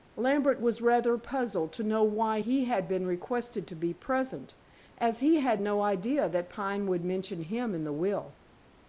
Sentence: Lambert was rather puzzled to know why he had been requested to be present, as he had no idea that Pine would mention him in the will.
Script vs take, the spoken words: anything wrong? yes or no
no